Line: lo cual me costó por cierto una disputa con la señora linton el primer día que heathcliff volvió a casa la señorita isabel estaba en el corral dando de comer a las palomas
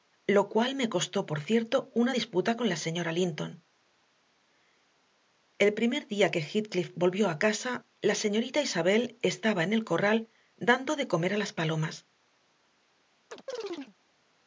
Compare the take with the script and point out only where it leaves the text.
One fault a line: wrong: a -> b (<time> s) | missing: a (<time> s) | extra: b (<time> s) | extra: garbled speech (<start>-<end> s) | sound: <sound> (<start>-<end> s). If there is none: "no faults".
sound: chirp (13.3-13.9 s)